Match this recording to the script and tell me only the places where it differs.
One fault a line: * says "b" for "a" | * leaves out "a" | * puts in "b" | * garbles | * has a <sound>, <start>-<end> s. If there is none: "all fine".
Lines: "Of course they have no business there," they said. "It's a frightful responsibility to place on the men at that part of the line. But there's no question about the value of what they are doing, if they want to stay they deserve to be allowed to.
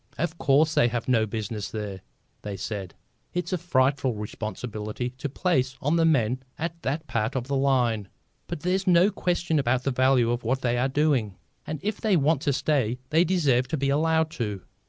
* puts in "and"